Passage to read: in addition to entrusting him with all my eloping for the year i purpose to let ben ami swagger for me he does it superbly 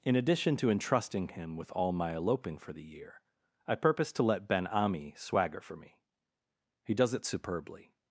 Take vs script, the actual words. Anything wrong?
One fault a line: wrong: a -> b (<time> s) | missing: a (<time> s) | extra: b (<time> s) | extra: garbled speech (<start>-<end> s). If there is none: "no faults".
no faults